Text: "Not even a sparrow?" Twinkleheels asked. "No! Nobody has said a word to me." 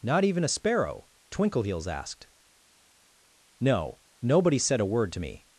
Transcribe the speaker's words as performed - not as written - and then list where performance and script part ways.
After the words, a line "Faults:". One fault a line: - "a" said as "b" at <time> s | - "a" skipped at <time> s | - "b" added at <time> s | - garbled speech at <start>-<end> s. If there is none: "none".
"Not even a sparrow?" Twinkleheels asked. "No! Nobody said a word to me."
Faults:
- "has" skipped at 4.6 s